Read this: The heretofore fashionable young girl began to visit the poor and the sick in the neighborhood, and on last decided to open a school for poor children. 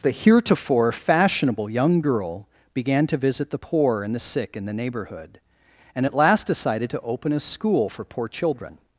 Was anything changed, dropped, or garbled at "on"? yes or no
yes